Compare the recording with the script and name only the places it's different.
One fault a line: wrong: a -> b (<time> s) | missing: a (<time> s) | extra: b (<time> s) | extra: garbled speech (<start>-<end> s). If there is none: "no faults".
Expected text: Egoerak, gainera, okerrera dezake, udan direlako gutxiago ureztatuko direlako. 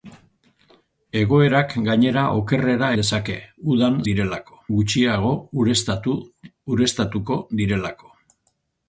no faults